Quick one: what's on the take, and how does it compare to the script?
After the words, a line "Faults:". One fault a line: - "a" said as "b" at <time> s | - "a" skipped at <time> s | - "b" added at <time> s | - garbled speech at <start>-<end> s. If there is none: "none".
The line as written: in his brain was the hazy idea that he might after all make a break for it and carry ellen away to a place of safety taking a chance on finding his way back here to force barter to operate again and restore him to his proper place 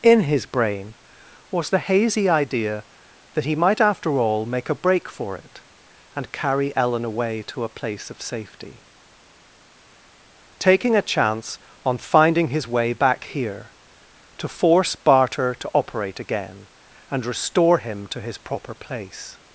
in his brain was the hazy idea that he might after all make a break for it and carry ellen away to a place of safety taking a chance on finding his way back here to force barter to operate again and restore him to his proper place
Faults:
none